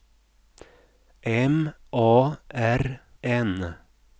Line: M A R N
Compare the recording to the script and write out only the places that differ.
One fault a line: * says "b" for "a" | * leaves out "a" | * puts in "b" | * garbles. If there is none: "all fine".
all fine